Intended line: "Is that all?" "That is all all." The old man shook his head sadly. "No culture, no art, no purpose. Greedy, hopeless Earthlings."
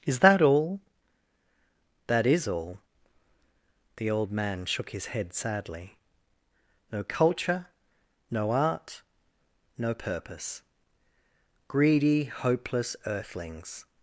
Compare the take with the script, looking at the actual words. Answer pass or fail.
fail